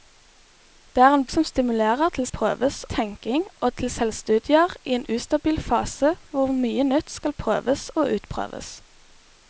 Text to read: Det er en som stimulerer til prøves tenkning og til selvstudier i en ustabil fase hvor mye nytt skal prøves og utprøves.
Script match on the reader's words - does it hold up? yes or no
yes